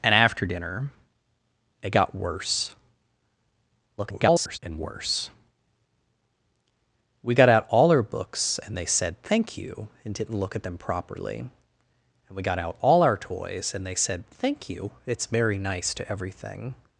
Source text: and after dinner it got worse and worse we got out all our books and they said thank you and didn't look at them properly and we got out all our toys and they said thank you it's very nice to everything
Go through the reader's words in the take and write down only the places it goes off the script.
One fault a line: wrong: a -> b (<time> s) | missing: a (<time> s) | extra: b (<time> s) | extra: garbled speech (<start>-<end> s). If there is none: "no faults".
extra: garbled speech (4.0-4.6 s)